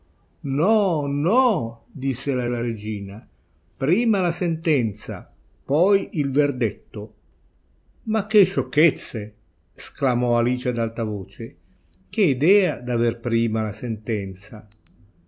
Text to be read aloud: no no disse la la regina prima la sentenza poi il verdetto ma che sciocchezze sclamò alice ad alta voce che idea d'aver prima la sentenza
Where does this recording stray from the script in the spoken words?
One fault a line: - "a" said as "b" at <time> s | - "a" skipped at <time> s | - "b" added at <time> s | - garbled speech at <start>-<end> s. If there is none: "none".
none